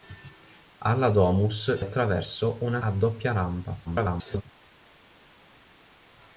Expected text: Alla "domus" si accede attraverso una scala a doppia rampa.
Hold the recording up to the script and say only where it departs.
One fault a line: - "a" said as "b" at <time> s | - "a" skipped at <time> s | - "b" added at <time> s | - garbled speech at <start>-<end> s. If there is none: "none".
- "si accede" skipped at 1.8 s
- "scala" skipped at 2.8 s
- garbled speech at 3.9-4.4 s